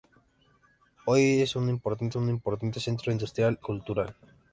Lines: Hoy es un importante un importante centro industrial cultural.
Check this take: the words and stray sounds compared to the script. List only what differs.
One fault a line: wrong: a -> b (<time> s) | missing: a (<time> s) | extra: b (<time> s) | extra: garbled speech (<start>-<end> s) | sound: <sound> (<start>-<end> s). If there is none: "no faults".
no faults